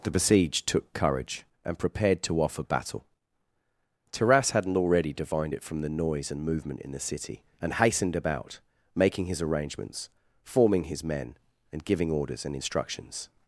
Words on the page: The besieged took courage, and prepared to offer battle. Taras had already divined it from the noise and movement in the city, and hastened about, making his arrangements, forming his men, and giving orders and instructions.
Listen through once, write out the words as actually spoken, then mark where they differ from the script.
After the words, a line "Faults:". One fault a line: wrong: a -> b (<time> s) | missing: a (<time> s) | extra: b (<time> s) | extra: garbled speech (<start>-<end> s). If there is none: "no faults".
The besieged took courage, and prepared to offer battle. Taras hadn't already divined it from the noise and movement in the city, and hastened about, making his arrangements, forming his men, and giving orders and instructions.
Faults:
wrong: had -> hadn't (4.5 s)